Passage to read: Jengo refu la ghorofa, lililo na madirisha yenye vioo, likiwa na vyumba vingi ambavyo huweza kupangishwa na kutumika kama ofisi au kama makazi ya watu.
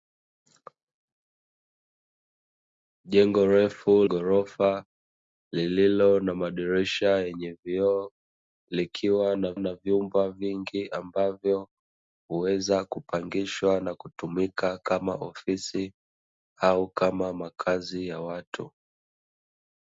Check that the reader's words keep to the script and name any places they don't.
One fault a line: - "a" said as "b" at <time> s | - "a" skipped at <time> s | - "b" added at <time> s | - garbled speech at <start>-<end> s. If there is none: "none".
- "la" skipped at 3.9 s
- "na" added at 9.6 s